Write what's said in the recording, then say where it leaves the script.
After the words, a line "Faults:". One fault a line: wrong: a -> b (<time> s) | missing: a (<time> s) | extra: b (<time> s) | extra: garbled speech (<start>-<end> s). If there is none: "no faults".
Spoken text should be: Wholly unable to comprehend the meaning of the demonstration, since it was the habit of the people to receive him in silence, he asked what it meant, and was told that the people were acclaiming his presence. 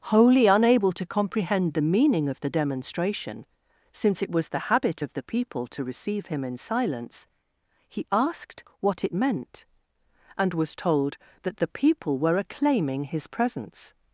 Wholly unable to comprehend the meaning of the demonstration, since it was the habit of the people to receive him in silence, he asked what it meant, and was told that the people were acclaiming his presence.
Faults:
no faults